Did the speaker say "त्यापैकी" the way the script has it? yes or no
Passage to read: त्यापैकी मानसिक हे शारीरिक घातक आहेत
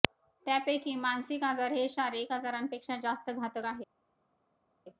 yes